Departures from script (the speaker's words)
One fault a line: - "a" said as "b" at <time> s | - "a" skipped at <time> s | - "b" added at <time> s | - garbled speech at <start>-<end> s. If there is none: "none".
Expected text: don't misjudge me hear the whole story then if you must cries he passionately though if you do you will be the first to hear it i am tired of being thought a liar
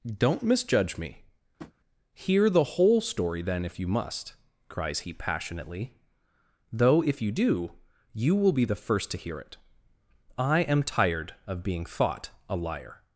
none